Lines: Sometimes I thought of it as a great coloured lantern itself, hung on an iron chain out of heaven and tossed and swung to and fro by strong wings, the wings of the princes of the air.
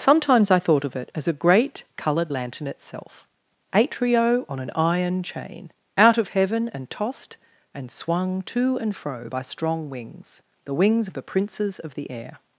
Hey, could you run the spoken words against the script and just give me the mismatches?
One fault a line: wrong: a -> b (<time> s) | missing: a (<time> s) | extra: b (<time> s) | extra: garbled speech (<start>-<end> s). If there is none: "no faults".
wrong: hung -> atrio (3.7 s)